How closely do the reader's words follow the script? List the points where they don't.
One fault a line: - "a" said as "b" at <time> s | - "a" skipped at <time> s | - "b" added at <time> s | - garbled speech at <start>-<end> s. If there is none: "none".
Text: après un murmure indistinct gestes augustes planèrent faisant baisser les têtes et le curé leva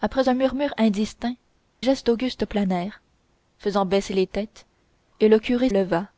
none